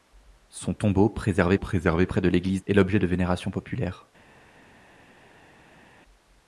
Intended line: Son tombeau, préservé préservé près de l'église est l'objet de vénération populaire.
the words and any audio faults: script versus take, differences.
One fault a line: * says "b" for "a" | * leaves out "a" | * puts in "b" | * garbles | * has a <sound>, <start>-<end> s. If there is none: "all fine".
all fine